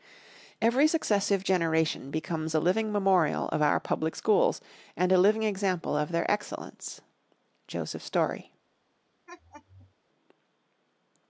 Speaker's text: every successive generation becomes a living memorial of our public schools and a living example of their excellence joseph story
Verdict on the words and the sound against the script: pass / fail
fail